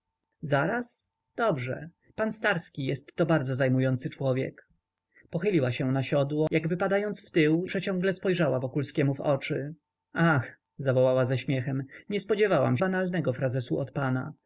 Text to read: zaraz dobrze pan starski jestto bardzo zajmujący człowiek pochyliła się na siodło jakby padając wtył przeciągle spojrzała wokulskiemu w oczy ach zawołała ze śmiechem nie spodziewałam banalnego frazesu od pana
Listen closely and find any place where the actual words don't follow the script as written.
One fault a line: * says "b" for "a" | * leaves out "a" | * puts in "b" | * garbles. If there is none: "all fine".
all fine